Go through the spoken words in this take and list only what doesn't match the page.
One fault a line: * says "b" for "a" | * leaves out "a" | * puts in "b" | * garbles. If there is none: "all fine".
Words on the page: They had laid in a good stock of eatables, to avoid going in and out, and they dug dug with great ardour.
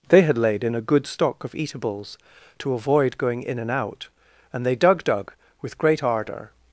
all fine